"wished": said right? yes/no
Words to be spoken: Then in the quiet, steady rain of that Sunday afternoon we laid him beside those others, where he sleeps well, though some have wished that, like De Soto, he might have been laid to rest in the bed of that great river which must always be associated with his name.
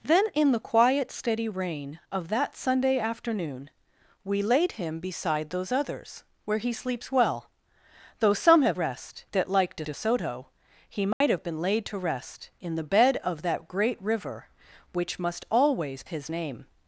no